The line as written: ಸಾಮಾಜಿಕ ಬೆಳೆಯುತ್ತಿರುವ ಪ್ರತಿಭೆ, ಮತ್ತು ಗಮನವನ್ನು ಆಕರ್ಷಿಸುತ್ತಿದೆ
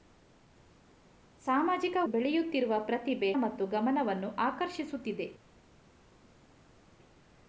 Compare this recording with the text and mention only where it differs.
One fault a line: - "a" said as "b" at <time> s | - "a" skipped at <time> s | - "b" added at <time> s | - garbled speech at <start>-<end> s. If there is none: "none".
none